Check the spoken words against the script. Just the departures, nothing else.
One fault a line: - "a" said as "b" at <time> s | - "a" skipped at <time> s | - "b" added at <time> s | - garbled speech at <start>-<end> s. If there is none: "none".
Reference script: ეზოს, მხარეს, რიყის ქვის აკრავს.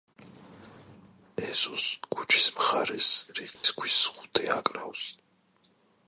- "ქუჩის" added at 2.1 s
- "ზღუდე" added at 4.1 s